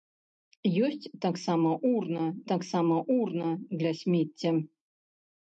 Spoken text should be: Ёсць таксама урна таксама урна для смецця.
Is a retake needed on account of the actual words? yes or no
no